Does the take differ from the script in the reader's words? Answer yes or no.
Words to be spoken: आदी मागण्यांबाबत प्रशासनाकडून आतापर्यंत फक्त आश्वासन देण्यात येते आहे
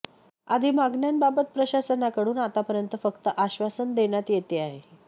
no